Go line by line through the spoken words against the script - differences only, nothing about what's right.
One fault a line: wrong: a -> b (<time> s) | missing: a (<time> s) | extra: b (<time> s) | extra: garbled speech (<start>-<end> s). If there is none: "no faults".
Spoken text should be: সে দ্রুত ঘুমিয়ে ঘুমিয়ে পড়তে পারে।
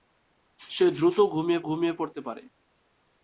no faults